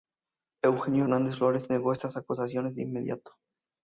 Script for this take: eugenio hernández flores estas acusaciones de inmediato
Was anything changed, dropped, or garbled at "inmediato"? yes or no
no